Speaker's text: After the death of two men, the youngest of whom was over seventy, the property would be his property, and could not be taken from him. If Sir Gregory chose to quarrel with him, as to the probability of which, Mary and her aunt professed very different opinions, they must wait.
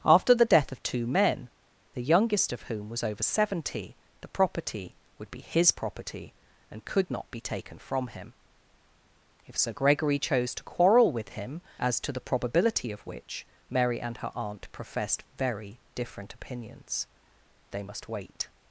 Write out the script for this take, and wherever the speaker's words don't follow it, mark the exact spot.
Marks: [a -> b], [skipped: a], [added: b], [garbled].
After the death of two men, the youngest of whom was over seventy, the property would be his property, and could not be taken from him. If Sir Gregory chose to quarrel with him, as to the probability of which, Mary and her aunt professed very different opinions, they must wait.